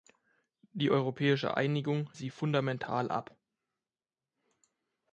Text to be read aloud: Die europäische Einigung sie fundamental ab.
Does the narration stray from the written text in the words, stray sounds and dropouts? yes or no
no